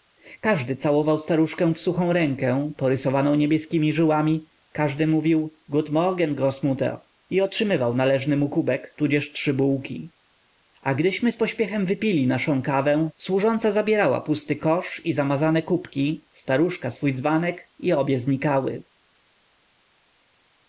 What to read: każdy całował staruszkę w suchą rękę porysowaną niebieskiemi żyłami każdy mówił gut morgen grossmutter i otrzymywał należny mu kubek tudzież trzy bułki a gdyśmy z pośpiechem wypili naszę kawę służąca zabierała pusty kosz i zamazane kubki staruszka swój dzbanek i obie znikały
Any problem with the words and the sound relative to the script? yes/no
no